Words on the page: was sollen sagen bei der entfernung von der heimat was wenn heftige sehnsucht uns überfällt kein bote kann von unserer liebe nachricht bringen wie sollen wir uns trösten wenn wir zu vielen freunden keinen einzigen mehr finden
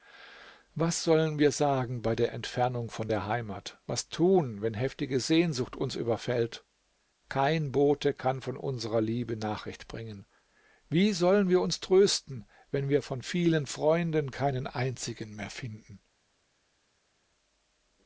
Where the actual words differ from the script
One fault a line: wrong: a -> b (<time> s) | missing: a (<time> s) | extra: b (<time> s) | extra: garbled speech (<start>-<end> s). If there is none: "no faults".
extra: wir (1.4 s)
extra: tun (4.1 s)
wrong: zu -> von (13.0 s)